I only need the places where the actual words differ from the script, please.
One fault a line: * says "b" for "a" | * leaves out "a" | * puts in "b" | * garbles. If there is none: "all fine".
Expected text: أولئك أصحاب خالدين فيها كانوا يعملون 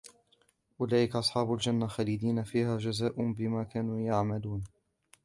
* puts in "الجنة"
* puts in "جزاء بما"